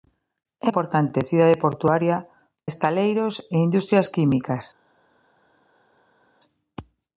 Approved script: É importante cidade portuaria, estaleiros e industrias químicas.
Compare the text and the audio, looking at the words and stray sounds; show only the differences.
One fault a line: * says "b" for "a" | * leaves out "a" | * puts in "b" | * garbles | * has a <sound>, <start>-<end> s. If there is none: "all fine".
all fine